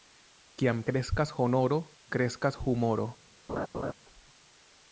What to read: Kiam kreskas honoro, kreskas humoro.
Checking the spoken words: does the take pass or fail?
pass